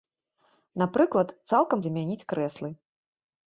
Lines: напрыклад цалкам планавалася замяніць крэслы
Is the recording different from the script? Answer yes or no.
yes